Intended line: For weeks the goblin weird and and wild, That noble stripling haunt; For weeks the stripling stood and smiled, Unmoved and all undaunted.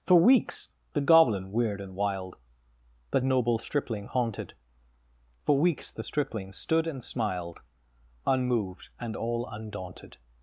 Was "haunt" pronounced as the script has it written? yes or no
no